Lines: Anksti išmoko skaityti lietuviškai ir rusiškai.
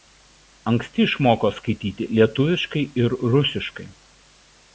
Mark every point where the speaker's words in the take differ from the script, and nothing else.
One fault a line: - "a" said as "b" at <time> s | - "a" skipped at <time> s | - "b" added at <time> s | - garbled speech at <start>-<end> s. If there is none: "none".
none